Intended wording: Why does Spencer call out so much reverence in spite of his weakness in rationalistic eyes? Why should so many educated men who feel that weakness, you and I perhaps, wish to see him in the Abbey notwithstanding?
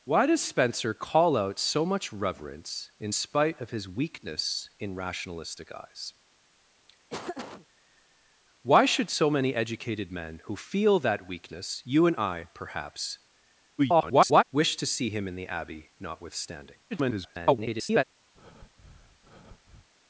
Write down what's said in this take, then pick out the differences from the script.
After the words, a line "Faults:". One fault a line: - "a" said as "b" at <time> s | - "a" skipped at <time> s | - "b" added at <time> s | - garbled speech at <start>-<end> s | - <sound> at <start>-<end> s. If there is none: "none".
Why does Spencer call out so much reverence in spite of his weakness in rationalistic eyes? Why should so many educated men who feel that weakness, you and I perhaps, [garbled] wish to see him in the Abbey notwithstanding? [garbled]
Faults:
- laugh at 7.1-7.7 s
- garbled speech at 13.8-14.4 s
- garbled speech at 16.9-18.0 s
- breath at 18.3-19.9 s